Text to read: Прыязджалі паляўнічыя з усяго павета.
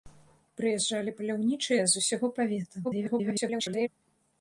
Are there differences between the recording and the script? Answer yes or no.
yes